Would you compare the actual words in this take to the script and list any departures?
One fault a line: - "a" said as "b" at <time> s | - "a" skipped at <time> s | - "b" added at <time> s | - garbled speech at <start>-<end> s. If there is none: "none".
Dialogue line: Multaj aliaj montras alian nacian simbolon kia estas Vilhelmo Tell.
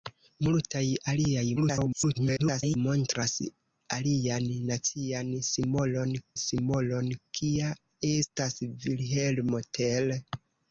- garbled speech at 1.6-2.8 s
- "simbolon" added at 6.4 s